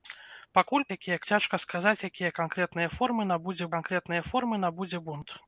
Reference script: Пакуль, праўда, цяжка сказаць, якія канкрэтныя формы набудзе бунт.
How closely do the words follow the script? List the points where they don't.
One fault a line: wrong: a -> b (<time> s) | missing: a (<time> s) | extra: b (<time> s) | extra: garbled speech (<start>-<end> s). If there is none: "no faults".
wrong: праўда -> якія (1.0 s)
extra: канкрэтныя формы набудзе (3.7 s)